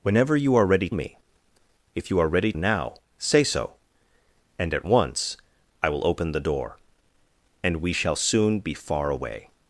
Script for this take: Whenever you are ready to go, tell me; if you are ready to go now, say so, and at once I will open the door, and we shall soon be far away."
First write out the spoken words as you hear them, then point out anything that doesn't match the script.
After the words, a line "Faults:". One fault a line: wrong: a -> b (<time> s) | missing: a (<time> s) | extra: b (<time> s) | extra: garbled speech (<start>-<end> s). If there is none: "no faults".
Whenever you are ready me; if you are ready now, say so, and at once I will open the door, and we shall soon be far away."
Faults:
missing: to go tell (0.9 s)
missing: to go (2.5 s)